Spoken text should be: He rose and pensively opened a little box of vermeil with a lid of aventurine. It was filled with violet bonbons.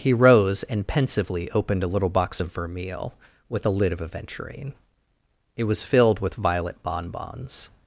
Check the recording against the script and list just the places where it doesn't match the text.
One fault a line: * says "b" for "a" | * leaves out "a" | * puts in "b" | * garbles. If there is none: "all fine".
all fine